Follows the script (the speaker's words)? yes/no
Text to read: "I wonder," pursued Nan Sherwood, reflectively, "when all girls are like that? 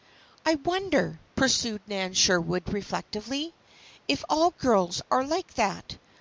no